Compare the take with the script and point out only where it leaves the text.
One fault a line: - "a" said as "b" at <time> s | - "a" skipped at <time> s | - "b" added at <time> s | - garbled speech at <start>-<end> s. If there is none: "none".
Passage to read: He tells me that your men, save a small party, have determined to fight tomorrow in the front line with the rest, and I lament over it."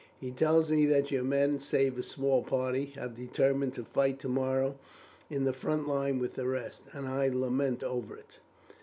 none